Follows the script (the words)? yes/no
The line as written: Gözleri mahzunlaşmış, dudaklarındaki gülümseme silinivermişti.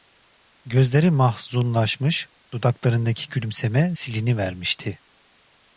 yes